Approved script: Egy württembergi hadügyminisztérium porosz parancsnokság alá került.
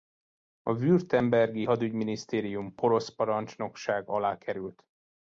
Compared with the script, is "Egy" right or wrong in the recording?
wrong